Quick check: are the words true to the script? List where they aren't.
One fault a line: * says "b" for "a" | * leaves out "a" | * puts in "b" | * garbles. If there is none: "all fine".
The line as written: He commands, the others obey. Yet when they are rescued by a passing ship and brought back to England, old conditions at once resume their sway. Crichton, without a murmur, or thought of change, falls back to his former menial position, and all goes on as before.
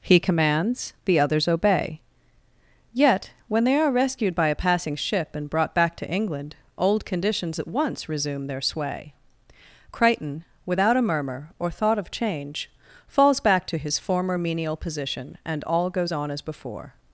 all fine